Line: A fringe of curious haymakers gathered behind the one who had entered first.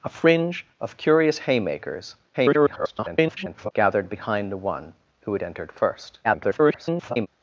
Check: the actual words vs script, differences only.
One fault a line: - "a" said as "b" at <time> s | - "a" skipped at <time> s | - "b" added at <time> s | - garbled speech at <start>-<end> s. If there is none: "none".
- garbled speech at 2.3-3.7 s
- garbled speech at 6.2-7.3 s